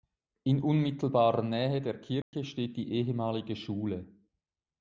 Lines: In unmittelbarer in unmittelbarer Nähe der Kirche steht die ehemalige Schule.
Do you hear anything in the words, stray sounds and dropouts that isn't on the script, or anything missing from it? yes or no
yes